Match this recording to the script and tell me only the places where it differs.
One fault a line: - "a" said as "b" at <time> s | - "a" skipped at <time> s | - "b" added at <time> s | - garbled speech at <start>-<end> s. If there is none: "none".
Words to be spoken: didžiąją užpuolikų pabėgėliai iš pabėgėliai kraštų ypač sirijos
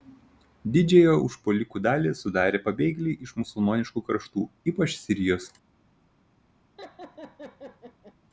- "dalį sudarė" added at 1.9 s
- "pabėgėliai" said as "musulmoniškų" at 3.4 s